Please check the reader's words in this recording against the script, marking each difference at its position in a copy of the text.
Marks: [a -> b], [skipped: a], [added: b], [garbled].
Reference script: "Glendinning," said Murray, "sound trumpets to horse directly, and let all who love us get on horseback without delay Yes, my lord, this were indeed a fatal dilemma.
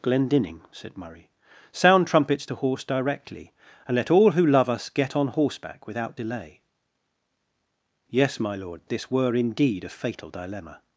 "Glendinning," said Murray, "sound trumpets to horse directly, and let all who love us get on horseback without delay Yes, my lord, this were indeed a fatal dilemma.